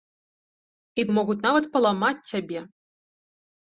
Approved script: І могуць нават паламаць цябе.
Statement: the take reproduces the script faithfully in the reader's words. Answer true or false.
true